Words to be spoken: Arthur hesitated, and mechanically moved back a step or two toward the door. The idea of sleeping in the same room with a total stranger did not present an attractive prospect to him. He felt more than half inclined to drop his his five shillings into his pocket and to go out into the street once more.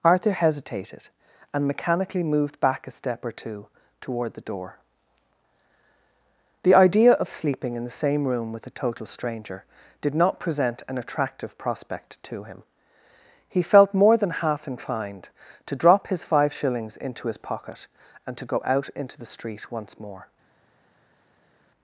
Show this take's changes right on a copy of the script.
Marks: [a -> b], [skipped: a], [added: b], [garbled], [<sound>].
Arthur hesitated, and mechanically moved back a step or two toward the door. The idea of sleeping in the same room with a total stranger did not present an attractive prospect to him. He felt more than half inclined to drop his [skipped: his] five shillings into his pocket and to go out into the street once more.